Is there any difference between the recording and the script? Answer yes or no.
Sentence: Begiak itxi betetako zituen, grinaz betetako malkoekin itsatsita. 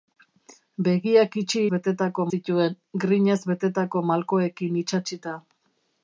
no